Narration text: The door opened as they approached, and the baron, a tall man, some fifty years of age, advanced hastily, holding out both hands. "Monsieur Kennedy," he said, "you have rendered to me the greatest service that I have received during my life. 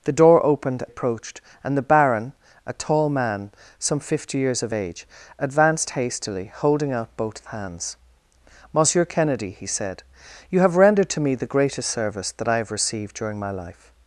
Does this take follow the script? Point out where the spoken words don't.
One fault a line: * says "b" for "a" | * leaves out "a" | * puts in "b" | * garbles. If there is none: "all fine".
* leaves out "as they"